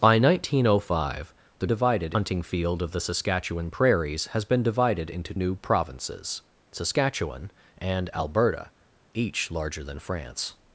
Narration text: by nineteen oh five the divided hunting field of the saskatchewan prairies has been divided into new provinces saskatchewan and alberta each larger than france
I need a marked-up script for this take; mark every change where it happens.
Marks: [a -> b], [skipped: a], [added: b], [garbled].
by nineteen oh five the divided hunting field of the saskatchewan prairies has been divided into new provinces saskatchewan and alberta each larger than france